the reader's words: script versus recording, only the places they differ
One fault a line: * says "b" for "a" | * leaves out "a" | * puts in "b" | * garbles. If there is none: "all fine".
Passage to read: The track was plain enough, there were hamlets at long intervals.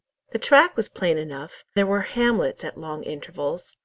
all fine